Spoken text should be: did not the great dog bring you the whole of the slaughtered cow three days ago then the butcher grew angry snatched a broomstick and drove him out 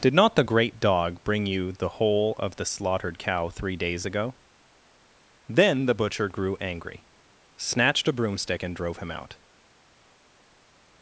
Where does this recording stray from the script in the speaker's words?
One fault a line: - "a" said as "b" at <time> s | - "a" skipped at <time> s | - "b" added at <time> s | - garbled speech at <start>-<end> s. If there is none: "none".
none